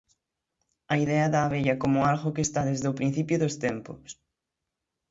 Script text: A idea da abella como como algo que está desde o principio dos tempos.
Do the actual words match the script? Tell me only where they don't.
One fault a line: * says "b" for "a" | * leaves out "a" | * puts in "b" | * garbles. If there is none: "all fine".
* leaves out "como"